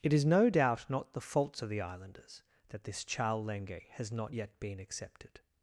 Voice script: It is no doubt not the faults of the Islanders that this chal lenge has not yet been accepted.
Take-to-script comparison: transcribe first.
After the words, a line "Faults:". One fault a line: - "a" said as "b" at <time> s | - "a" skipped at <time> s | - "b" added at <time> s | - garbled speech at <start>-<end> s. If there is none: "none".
It is no doubt not the faults of the Islanders that this chal lenge has not yet been accepted.
Faults:
none